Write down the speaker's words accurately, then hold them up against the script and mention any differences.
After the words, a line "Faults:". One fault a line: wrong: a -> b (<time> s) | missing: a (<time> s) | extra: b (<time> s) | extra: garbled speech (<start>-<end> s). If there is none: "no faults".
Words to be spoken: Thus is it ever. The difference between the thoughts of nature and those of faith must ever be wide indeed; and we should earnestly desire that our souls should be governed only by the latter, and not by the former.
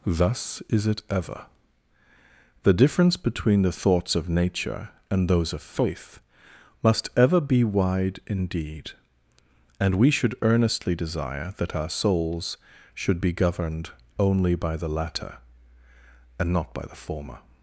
Thus is it ever. The difference between the thoughts of nature and those of faith must ever be wide indeed; and we should earnestly desire that our souls should be governed only by the latter, and not by the former.
Faults:
no faults